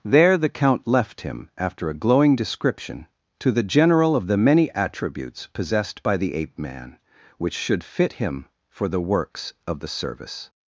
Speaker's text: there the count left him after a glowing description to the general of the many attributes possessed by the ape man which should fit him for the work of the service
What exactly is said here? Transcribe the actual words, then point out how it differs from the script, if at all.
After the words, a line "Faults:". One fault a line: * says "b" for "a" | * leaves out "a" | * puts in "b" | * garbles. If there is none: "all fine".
there the count left him after a glowing description to the general of the many attributes possessed by the ape man which should fit him for the works of the service
Faults:
* says "works" for "work"